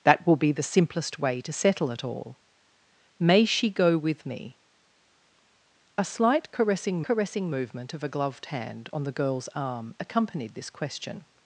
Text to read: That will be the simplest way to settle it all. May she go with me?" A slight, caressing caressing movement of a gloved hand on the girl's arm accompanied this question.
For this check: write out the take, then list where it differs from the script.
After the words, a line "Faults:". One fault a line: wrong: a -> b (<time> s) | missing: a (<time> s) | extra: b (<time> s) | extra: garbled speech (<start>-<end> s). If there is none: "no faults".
That will be the simplest way to settle it all. May she go with me?" A slight, caressing caressing movement of a gloved hand on the girl's arm accompanied this question.
Faults:
no faults